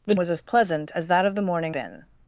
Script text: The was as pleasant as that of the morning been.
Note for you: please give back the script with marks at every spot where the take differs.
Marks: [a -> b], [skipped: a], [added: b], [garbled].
The was as pleasant as that of the morning been.